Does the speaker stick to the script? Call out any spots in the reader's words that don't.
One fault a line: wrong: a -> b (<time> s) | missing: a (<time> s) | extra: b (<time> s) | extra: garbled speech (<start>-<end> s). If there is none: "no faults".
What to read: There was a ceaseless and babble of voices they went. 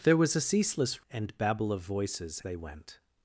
no faults